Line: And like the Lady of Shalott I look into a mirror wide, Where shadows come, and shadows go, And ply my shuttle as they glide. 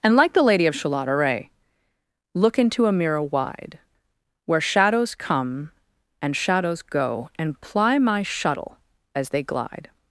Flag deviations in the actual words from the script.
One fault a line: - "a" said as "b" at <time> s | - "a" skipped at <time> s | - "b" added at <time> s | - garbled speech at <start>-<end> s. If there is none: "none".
- "I" said as "array" at 1.1 s